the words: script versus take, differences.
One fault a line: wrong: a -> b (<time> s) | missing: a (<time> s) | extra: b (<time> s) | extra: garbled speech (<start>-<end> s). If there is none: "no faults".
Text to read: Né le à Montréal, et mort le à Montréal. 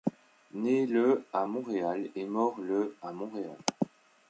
no faults